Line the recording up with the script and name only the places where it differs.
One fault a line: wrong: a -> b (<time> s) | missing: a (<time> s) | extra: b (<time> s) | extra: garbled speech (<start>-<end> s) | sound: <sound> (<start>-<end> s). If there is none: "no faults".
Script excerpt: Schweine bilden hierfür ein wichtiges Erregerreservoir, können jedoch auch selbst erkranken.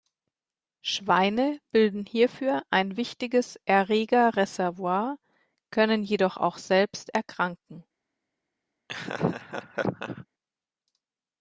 sound: laugh (8.9-10.3 s)